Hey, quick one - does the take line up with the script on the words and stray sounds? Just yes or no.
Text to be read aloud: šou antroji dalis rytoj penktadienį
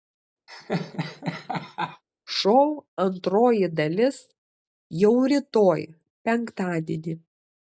no